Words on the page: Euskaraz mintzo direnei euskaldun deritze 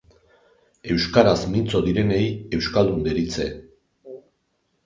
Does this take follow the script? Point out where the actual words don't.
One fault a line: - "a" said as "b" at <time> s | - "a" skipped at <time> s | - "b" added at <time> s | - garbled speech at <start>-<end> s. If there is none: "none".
none